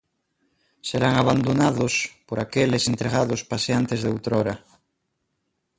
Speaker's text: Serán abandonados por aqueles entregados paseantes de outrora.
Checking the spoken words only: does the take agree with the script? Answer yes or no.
yes